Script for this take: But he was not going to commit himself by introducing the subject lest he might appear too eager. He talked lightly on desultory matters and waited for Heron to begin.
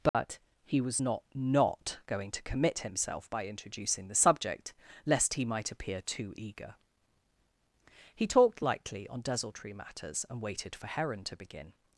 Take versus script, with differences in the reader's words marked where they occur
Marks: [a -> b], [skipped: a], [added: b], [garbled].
But he was not [added: not] going to commit himself by introducing the subject lest he might appear too eager. He talked lightly on desultory matters and waited for Heron to begin.